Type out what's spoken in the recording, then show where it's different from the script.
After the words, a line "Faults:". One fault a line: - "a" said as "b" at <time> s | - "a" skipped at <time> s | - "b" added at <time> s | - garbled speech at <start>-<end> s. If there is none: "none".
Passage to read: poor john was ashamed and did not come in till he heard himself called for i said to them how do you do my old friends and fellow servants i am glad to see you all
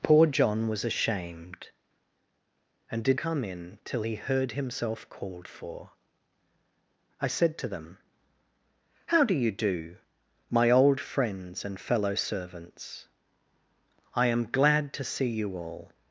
poor john was ashamed and did come in till he heard himself called for i said to them how do you do my old friends and fellow servants i am glad to see you all
Faults:
- "not" skipped at 3.2 s